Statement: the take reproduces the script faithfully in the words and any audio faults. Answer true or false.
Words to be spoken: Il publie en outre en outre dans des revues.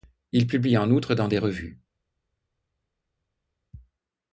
false